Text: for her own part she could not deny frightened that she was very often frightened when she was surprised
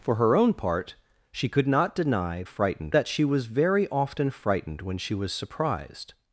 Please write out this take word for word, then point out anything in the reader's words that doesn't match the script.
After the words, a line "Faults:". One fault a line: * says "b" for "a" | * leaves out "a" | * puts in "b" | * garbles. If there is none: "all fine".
for her own part she could not deny frightened that she was very often frightened when she was surprised
Faults:
all fine